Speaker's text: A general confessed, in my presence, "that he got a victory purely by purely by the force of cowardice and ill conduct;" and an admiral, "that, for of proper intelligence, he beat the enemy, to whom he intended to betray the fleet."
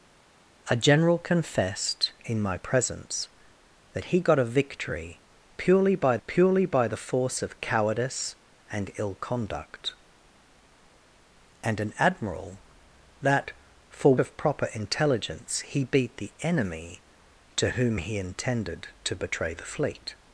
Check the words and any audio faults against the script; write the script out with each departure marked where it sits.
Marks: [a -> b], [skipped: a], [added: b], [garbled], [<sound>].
A general confessed, in my presence, "that he got a victory purely by purely by the force of cowardice and ill conduct;" and an admiral, "that, for of proper intelligence, he beat the enemy, to whom he intended to betray the fleet."